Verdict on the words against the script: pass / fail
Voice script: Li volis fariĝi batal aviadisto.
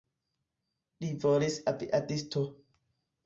fail